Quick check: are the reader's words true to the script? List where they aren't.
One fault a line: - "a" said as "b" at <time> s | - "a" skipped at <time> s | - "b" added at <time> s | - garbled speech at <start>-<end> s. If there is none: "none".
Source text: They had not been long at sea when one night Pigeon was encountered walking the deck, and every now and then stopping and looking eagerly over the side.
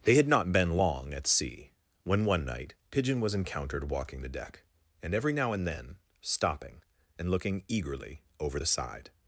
none